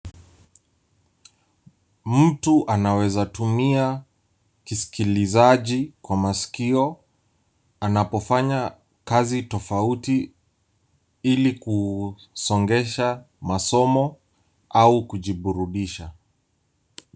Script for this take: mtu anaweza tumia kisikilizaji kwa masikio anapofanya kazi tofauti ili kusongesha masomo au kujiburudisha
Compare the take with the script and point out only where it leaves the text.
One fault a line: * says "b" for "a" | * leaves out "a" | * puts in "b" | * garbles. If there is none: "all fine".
all fine